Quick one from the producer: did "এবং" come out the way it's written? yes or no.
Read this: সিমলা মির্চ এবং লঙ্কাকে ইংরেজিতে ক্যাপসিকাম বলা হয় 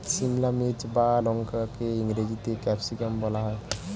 no